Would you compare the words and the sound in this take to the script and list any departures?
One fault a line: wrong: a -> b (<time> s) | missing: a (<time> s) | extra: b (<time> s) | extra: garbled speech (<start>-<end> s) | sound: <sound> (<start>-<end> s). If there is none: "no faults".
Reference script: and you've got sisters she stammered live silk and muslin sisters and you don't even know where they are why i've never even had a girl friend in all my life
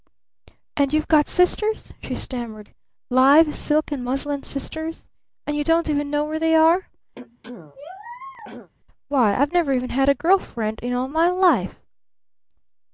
sound: throat clearing (7.2-8.7 s)